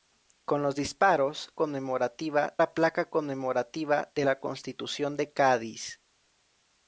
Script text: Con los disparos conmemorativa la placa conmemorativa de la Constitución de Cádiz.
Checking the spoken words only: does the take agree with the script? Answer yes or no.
yes